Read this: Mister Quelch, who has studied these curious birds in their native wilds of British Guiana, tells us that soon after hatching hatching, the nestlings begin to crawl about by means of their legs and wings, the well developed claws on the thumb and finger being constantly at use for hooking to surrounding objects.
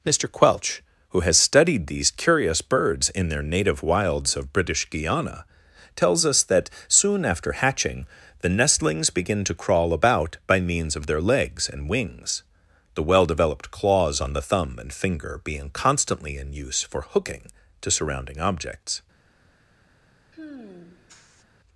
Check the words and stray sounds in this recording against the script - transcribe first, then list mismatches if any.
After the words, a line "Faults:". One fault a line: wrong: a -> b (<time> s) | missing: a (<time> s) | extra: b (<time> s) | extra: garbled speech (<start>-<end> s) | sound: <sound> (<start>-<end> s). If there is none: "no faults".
Mister Quelch, who has studied these curious birds in their native wilds of British Guiana, tells us that soon after hatching, the nestlings begin to crawl about by means of their legs and wings, the well developed claws on the thumb and finger being constantly in use for hooking to surrounding objects.
Faults:
missing: hatching (8.1 s)
wrong: at -> in (16.4 s)
sound: sigh (20.3-21.4 s)